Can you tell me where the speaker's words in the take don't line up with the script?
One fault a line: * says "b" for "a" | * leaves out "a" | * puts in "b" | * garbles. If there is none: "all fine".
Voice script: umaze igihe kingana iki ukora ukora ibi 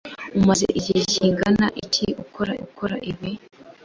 all fine